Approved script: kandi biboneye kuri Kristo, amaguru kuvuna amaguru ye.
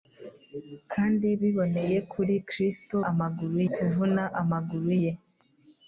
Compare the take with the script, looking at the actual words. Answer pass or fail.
pass